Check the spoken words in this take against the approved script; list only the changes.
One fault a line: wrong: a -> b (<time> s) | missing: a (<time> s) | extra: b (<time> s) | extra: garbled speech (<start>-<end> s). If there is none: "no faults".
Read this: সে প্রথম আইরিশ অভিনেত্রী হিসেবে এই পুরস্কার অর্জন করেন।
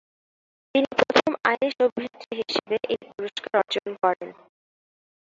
wrong: সে -> তিনি (0.8 s)